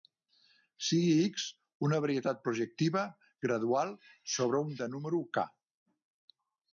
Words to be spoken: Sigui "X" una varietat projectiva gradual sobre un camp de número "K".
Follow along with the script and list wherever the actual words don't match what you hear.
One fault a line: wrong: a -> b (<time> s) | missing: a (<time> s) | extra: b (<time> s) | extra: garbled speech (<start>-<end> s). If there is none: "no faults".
missing: camp (4.7 s)